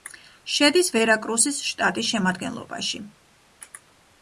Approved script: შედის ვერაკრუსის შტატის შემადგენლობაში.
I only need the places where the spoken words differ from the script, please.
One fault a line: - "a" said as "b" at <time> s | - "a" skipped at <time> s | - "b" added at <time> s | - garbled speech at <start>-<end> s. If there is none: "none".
none